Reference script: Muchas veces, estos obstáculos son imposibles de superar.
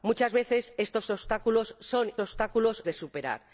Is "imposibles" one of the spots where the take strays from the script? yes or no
yes